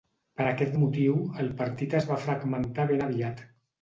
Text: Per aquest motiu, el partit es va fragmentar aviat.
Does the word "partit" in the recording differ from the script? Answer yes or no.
no